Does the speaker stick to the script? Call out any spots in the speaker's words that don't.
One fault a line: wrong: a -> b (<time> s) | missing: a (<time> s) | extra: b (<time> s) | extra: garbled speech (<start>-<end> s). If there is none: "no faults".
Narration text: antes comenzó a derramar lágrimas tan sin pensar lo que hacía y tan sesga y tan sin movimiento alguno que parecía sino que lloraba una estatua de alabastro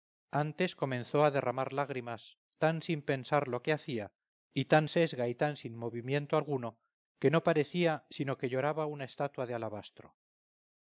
extra: no (7.3 s)